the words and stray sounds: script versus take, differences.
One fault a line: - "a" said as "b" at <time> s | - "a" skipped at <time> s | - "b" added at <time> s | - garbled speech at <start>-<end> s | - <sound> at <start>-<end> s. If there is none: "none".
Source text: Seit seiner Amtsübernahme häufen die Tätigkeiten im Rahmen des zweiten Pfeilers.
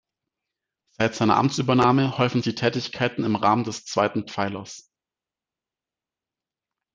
none